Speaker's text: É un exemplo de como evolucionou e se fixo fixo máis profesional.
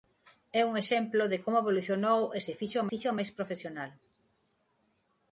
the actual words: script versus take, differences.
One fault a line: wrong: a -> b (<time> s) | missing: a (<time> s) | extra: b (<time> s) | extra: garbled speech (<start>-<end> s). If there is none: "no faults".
no faults